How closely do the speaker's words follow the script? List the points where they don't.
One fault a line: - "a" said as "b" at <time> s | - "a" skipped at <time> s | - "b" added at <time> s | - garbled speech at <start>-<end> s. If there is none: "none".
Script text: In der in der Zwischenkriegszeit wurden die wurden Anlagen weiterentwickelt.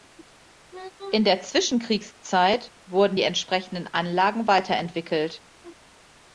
- "in der" skipped at 1.4 s
- "wurden" said as "entsprechenden" at 3.2 s